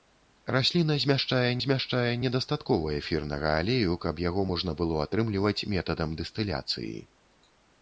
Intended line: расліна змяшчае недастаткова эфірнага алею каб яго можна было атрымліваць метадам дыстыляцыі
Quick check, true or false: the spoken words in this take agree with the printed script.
false